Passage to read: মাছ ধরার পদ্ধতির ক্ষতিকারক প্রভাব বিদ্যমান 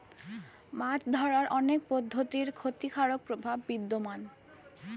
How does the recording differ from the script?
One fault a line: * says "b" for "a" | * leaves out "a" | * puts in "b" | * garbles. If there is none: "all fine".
* puts in "অনেক"